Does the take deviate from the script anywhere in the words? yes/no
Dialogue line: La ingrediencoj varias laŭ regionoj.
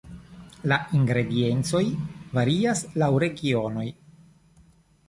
no